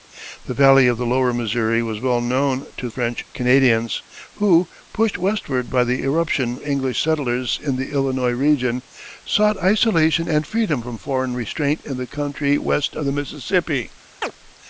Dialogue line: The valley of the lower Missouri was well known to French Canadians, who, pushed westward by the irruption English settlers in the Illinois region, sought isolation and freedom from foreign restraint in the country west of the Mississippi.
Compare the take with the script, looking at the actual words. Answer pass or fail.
pass